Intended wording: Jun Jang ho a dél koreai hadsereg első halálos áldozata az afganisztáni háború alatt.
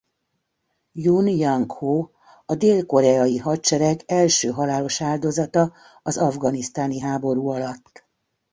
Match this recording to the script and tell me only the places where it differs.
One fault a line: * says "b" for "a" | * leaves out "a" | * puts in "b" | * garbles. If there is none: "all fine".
all fine